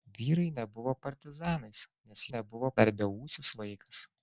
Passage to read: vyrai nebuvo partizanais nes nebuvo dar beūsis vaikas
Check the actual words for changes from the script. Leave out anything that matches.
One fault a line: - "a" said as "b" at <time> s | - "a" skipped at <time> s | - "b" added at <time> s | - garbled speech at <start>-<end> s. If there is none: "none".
none